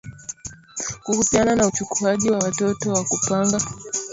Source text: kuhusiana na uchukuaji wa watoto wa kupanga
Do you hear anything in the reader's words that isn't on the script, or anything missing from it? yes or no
no